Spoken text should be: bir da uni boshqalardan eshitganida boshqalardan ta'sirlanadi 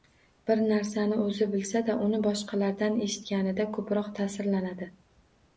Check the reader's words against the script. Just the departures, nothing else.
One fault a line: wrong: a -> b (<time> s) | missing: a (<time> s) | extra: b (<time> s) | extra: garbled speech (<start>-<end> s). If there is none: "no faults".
extra: narsani o‘zi bilsa (0.7 s)
wrong: boshqalardan -> ko‘proq (3.8 s)